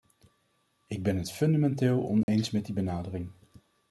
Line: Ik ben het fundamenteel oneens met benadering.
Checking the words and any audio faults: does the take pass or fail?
fail